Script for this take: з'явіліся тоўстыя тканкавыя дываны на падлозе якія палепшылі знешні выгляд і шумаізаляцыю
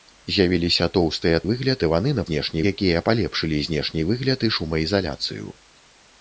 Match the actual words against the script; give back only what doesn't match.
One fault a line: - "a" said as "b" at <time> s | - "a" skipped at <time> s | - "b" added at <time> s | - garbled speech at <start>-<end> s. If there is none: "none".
- "тканкавыя" said as "выгляд" at 1.5 s
- "падлозе" said as "знешні" at 2.3 s